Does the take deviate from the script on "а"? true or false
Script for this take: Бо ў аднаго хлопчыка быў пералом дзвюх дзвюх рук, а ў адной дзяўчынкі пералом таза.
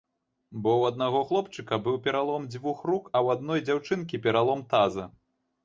false